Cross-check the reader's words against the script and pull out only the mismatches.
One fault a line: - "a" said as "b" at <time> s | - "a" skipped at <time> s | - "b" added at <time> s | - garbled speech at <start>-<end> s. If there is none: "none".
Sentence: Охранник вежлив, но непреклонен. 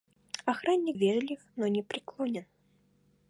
none